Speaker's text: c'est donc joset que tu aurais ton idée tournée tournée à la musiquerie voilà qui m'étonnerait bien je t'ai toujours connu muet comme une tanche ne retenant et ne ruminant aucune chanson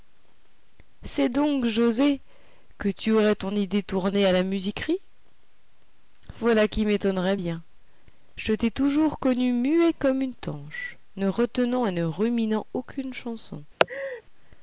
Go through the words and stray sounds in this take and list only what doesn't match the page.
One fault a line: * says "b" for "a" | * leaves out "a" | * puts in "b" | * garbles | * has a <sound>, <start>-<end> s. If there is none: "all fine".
* leaves out "tournée"
* has a laugh, 13.8-14.2 s